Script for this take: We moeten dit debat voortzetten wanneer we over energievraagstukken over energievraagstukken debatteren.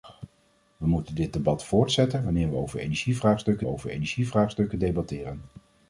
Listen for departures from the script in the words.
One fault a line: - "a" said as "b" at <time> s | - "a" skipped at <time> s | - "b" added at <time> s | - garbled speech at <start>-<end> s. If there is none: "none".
none